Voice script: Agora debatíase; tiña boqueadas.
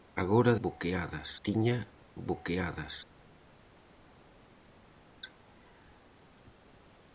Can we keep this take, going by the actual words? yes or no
no